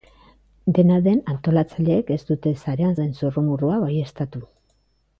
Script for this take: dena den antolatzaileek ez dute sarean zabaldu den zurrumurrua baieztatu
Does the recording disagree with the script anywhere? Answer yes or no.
yes